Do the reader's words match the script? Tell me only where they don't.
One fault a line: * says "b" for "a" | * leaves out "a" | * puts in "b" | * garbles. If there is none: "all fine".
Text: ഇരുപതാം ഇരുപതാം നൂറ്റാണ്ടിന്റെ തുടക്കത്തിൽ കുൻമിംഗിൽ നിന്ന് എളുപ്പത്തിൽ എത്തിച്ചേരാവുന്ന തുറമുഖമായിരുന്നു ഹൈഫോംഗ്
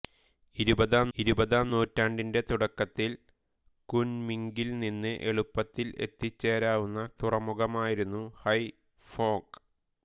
all fine